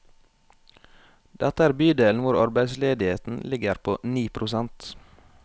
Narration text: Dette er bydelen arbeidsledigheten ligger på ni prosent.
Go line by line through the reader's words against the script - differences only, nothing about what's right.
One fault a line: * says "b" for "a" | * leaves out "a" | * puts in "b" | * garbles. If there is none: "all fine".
* puts in "hvor"